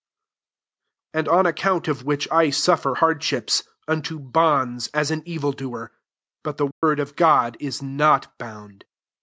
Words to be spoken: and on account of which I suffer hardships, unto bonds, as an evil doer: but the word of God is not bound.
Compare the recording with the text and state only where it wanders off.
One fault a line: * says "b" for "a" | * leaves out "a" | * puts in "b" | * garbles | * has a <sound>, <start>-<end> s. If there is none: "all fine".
* has a dropout, 6.7-6.8 s